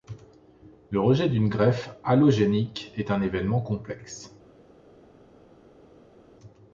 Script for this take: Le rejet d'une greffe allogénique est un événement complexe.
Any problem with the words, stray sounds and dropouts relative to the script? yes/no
no